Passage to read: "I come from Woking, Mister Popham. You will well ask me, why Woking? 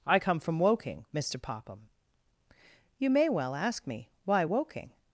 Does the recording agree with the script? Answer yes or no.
no